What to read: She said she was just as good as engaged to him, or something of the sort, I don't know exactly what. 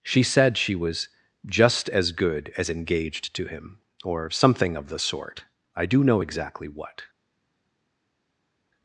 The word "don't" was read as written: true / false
false